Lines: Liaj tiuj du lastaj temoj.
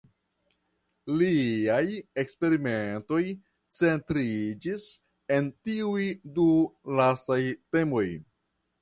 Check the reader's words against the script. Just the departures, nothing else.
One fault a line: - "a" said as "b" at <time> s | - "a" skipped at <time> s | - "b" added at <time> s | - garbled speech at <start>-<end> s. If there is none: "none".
- "eksperimentoj centriĝis en" added at 2.2 s